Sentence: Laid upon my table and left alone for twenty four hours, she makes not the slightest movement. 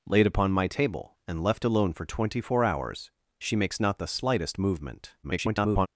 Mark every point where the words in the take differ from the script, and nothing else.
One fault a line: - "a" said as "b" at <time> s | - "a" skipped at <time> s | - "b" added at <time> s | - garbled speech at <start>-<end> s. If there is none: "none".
- garbled speech at 5.2-5.9 s